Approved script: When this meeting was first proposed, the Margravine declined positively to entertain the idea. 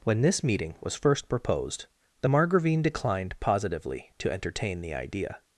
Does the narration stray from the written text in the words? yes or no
no